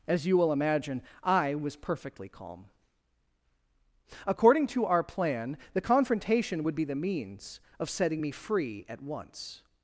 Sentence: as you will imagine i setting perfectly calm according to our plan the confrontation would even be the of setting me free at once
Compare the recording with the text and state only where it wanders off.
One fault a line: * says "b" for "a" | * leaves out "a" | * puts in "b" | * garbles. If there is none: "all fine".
* says "was" for "setting"
* leaves out "even"
* puts in "means"